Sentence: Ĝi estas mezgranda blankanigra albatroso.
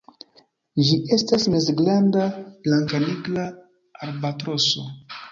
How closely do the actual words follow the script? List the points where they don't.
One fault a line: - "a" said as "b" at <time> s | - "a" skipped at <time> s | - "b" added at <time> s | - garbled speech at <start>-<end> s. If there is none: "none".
none